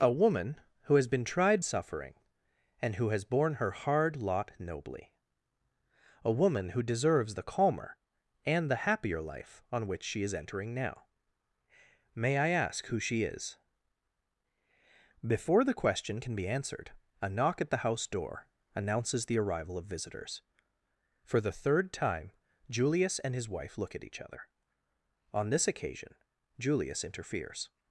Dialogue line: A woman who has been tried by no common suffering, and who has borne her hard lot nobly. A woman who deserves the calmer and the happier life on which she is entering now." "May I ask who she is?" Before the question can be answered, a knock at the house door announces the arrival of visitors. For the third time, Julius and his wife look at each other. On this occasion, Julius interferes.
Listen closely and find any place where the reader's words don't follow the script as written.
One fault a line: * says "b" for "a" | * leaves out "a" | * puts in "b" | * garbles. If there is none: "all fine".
* leaves out "by no common"